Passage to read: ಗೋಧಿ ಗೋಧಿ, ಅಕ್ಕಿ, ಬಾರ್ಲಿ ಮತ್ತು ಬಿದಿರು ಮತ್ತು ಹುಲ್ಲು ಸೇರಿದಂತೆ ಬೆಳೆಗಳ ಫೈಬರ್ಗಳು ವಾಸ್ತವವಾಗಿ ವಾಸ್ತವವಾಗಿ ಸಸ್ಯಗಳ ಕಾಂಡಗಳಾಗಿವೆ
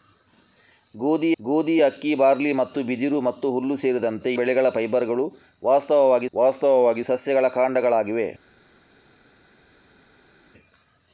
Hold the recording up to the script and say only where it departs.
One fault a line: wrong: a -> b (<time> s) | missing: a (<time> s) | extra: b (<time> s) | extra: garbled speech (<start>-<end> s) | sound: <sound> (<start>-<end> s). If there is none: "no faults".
no faults